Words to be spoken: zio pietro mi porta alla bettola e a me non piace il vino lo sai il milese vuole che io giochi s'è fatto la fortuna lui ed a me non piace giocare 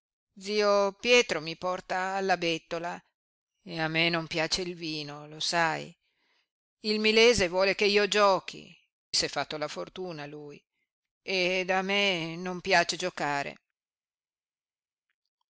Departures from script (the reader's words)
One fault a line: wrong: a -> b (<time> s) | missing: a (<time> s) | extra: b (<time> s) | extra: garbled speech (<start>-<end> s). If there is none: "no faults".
no faults